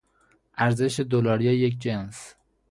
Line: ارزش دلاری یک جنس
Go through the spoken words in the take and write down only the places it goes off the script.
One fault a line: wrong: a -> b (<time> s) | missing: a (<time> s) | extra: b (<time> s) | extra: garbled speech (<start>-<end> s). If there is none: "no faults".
no faults